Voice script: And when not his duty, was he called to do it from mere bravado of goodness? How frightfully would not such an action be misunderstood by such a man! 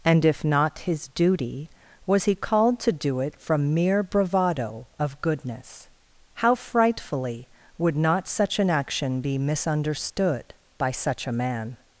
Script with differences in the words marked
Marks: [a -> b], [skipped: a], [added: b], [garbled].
And [when -> if] not his duty, was he called to do it from mere bravado of goodness? How frightfully would not such an action be misunderstood by such a man!